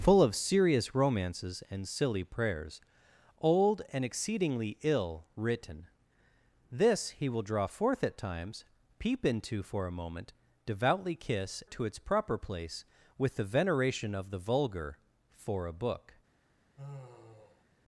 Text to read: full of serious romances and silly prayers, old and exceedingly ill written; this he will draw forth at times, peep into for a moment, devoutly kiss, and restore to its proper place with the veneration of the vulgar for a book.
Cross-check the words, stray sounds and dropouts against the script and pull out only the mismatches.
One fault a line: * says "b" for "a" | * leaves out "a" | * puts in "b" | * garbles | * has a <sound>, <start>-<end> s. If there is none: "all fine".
* leaves out "and restore"
* has a sigh, 16.8-17.6 s